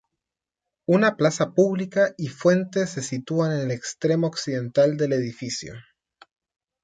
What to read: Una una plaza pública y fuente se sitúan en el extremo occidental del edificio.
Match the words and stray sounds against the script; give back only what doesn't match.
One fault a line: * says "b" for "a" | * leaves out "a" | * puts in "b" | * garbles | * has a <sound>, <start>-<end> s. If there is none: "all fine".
* leaves out "una"